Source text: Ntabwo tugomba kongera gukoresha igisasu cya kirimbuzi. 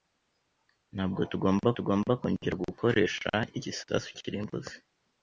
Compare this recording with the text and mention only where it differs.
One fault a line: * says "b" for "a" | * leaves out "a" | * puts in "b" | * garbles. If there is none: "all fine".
* puts in "tugomba"
* leaves out "cya"